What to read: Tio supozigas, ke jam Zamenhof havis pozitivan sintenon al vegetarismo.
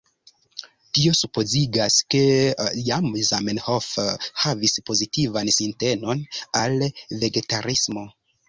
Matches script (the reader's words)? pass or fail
pass